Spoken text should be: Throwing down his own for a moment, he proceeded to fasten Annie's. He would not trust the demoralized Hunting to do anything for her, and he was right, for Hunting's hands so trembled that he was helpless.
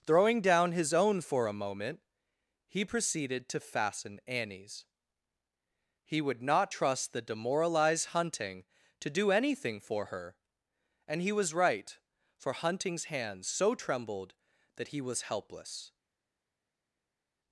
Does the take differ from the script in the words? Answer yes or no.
no